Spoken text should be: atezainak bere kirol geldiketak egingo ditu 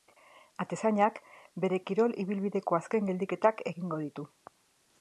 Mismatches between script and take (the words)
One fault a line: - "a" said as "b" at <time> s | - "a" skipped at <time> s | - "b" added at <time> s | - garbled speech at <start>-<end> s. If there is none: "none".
- "ibilbideko azken" added at 2.2 s